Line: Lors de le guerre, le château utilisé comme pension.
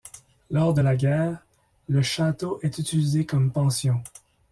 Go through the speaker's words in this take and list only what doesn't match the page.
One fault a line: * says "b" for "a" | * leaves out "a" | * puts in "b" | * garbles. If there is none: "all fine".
* says "la" for "le"
* puts in "est"